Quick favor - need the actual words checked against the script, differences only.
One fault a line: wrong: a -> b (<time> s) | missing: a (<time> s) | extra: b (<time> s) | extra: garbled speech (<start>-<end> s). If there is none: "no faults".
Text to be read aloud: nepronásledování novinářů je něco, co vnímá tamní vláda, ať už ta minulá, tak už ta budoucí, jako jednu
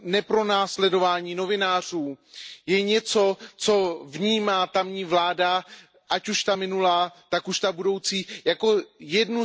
no faults